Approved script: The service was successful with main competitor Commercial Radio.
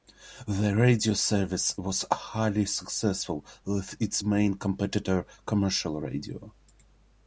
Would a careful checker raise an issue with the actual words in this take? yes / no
yes